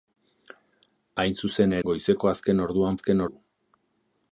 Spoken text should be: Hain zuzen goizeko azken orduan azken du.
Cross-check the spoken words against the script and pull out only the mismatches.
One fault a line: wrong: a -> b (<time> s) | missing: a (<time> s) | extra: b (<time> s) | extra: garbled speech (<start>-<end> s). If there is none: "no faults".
no faults